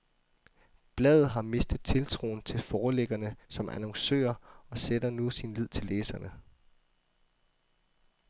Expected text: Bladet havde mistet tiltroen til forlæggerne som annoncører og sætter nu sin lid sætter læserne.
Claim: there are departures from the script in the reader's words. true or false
true